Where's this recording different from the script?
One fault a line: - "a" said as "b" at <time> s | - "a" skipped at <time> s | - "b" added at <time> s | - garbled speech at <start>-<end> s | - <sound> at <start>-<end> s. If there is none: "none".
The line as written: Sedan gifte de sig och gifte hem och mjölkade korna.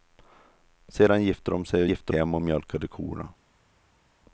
none